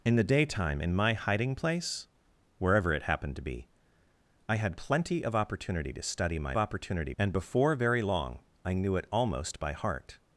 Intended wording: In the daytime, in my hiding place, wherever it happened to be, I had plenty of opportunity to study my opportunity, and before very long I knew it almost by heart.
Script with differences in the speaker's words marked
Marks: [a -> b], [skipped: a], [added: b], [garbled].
In the daytime, in my hiding place, wherever it happened to be, I had plenty of opportunity to study my opportunity, and before very long I knew it almost by heart.